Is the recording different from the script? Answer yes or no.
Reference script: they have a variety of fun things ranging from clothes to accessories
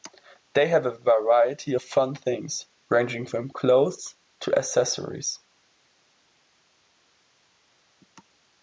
no